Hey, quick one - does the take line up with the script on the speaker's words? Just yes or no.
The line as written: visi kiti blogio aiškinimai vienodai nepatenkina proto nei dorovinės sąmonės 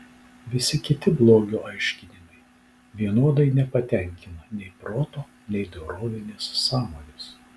no